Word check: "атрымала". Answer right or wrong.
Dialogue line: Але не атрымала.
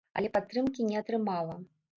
right